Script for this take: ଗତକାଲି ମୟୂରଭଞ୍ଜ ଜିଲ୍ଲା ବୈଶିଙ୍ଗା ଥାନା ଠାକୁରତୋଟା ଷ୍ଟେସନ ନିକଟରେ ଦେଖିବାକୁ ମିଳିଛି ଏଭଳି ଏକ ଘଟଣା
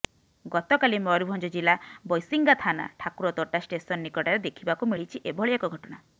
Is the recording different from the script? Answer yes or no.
no